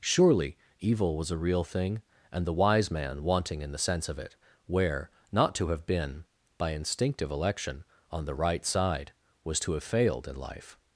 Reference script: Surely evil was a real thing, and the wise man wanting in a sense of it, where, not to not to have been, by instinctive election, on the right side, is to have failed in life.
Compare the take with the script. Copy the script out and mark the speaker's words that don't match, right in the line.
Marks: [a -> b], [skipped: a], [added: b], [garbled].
Surely evil was a real thing, and the wise man wanting in [a -> the] sense of it, where, not to [skipped: not to] have been, by instinctive election, on the right side, [is -> was] to have failed in life.